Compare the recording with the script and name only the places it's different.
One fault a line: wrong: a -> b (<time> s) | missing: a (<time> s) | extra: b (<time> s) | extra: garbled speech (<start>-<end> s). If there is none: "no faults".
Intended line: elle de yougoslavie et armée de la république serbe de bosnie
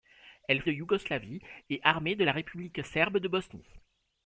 no faults